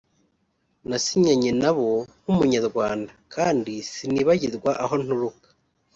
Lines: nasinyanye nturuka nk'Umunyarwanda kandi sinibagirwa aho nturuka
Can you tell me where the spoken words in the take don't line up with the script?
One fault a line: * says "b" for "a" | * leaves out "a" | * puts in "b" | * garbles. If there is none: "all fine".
* says "nabo" for "nturuka"